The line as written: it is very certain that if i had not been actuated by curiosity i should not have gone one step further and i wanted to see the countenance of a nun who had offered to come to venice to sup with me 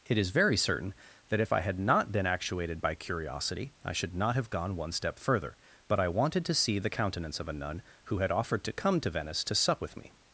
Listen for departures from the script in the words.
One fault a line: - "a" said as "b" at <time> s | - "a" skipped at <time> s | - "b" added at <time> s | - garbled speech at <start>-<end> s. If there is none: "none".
- "and" said as "but" at 5.9 s